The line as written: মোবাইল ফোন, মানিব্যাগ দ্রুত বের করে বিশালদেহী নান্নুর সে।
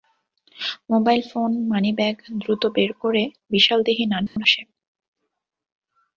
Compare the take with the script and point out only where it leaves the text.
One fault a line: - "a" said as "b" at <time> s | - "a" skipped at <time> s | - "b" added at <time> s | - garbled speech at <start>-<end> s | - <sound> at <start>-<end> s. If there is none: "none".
- dropout at 4.3-4.4 s